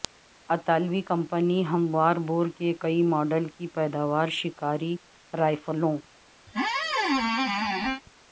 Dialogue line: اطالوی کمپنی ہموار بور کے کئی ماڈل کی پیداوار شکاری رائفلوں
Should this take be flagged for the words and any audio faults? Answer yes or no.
yes